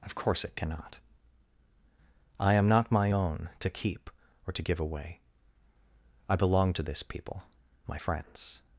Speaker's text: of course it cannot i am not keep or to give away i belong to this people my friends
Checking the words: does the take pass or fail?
fail